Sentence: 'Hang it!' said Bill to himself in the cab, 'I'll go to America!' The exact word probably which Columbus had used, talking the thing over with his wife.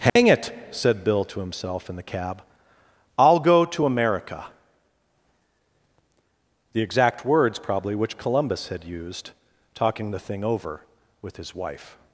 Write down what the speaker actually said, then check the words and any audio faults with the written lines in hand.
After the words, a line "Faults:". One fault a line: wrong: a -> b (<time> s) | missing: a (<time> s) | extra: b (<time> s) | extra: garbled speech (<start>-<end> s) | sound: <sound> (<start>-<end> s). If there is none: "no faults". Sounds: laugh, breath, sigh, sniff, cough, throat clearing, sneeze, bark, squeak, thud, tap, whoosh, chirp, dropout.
'Hang it!' said Bill to himself in the cab, 'I'll go to America!' The exact words probably which Columbus had used, talking the thing over with his wife.
Faults:
sound: dropout (0.1-0.2 s)
wrong: word -> words (7.3 s)